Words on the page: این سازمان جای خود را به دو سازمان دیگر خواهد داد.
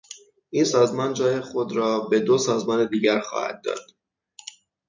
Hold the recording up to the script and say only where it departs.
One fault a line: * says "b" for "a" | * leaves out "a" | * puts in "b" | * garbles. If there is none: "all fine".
all fine